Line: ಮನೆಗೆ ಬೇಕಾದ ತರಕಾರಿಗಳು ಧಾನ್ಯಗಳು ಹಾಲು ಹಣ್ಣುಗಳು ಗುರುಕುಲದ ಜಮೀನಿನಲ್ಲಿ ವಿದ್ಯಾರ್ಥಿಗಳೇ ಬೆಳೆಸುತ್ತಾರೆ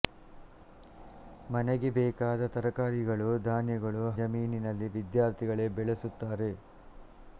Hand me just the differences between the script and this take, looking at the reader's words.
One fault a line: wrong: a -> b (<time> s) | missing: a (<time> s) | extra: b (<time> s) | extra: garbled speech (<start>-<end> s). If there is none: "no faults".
missing: ಹಾಲು ಹಣ್ಣುಗಳು ಗುರುಕುಲದ (4.0 s)